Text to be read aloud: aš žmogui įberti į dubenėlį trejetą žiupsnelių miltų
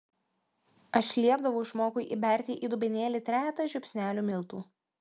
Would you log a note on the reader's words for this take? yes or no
yes